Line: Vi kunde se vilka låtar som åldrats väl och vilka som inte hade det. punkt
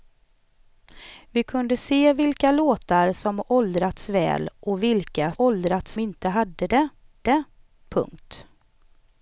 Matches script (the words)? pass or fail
fail